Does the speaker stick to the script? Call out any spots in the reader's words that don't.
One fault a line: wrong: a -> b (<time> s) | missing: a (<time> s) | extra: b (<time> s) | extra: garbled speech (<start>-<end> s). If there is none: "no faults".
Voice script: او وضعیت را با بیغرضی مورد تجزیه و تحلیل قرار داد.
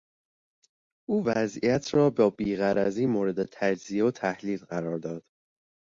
no faults